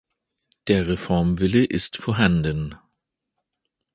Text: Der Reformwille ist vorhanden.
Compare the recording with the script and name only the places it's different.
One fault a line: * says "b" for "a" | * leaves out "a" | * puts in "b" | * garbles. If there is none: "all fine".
all fine